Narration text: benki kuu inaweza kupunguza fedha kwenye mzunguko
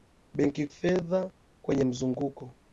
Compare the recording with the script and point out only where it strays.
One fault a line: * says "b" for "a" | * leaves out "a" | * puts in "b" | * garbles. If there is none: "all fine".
* leaves out "kuu inaweza kupunguza"